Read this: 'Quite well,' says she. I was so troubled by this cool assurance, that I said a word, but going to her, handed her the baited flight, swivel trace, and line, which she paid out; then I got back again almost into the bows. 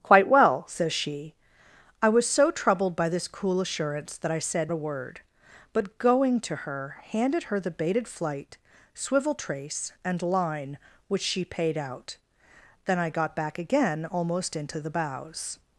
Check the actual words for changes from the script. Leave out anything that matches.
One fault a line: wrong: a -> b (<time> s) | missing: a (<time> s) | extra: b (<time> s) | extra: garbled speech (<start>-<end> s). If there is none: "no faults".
no faults